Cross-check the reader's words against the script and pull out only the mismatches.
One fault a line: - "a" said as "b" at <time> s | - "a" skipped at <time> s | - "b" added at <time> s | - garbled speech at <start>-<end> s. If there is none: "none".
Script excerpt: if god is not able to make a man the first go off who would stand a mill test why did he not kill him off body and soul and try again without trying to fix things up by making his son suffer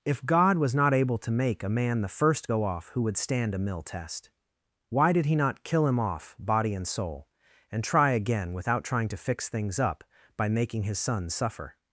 - "is" said as "was" at 0.6 s